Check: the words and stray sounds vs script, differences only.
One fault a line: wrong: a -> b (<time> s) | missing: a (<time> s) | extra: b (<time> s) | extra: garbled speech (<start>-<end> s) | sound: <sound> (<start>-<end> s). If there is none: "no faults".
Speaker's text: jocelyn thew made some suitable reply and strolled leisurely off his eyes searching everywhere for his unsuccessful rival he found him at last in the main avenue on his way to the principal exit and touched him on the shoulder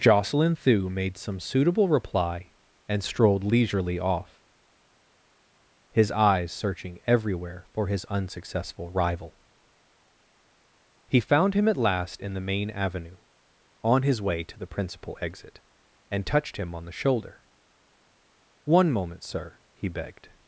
extra: one moment sir he begged (18.6 s)